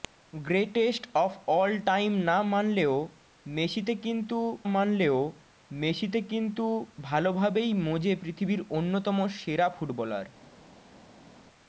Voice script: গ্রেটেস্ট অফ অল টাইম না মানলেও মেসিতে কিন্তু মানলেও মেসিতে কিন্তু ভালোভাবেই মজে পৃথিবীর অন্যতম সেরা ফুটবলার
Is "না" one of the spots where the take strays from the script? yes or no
no